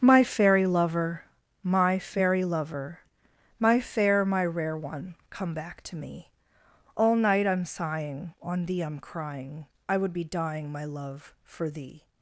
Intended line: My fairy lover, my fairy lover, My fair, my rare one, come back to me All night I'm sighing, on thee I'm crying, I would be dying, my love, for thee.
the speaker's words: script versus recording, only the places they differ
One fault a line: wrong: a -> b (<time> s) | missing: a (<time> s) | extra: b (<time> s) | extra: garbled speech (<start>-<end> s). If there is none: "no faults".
no faults